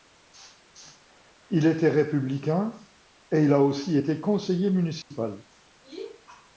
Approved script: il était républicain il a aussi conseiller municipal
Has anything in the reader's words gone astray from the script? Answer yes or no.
yes